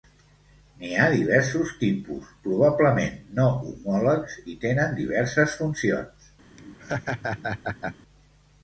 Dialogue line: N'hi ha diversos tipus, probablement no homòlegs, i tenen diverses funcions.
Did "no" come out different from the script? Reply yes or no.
no